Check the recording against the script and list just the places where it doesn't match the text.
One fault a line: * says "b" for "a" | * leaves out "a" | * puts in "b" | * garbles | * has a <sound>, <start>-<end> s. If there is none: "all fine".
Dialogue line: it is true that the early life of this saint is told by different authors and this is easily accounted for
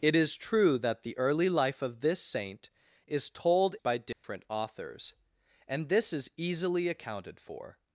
* has a dropout, 4.1-4.2 s